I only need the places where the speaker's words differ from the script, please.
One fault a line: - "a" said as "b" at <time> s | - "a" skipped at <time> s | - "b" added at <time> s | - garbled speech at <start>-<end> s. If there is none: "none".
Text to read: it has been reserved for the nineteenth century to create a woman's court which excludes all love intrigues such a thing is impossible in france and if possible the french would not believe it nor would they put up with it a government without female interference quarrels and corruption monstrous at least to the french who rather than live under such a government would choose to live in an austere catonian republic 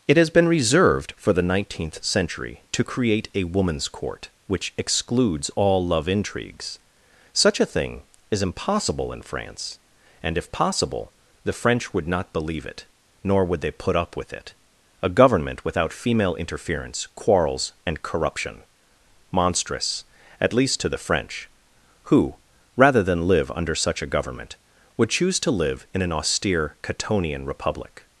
none